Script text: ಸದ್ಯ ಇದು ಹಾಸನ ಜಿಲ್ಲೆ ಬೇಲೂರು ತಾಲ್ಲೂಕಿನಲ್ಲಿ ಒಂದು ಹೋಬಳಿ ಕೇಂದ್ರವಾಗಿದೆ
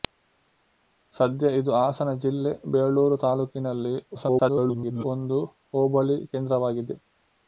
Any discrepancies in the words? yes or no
yes